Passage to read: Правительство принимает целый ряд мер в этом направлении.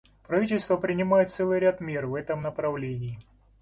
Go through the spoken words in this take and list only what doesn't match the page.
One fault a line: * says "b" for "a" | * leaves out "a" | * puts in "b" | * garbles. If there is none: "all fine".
all fine